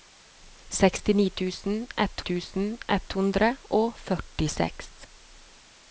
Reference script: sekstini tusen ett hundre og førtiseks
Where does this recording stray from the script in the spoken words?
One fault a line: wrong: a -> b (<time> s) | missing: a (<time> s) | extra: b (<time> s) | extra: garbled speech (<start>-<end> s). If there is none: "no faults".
extra: tusen ett (2.3 s)